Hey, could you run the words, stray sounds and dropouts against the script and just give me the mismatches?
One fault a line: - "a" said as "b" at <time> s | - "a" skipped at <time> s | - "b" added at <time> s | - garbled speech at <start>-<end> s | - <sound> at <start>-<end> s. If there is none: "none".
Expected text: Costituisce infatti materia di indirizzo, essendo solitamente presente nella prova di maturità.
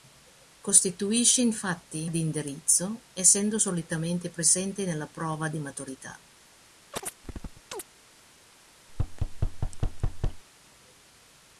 - "materia" skipped at 2.1 s
- chirp at 6.9-7.8 s
- thud at 8.9-10.4 s